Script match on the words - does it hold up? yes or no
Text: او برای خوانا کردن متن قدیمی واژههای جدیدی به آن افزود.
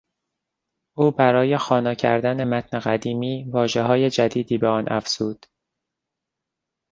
yes